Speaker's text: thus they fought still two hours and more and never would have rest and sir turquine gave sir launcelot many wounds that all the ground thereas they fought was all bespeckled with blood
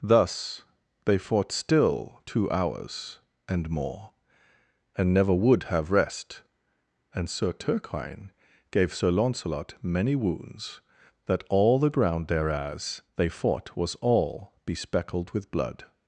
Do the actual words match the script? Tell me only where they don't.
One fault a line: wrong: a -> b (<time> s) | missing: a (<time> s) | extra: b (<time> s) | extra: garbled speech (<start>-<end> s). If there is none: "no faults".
no faults